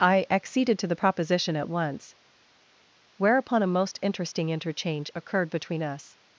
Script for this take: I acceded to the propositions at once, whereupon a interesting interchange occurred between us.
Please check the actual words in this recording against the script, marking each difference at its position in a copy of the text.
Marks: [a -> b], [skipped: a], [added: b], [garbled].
I acceded to the [propositions -> proposition] at once, whereupon a [added: most] interesting interchange occurred between us.